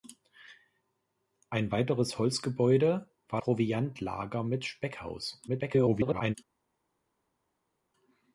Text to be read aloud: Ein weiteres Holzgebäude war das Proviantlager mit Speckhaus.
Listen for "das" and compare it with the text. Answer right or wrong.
wrong